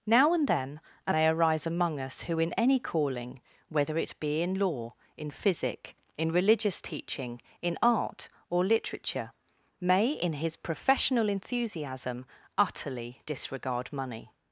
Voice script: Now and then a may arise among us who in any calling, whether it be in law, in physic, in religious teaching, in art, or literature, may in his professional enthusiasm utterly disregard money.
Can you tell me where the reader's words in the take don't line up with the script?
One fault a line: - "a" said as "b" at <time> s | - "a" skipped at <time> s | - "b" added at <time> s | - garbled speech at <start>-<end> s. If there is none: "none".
none